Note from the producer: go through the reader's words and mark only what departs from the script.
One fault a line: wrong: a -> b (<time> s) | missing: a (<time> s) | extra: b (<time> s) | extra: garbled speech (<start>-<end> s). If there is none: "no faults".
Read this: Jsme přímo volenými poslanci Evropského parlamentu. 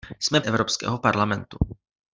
missing: přímo volenými poslanci (0.4 s)